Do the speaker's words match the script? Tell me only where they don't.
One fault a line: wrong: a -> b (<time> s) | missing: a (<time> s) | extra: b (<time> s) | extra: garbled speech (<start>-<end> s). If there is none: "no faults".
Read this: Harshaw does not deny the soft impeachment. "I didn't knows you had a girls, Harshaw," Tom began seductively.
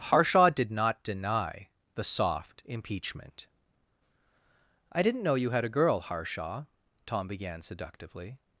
wrong: does -> did (0.5 s)
wrong: knows -> know (5.2 s)
wrong: girls -> girl (5.7 s)